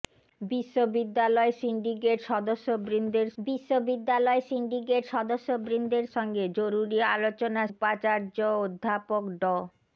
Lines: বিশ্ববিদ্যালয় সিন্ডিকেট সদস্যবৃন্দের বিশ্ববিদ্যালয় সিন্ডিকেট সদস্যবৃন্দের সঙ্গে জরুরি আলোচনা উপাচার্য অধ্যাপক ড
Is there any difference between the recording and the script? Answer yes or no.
no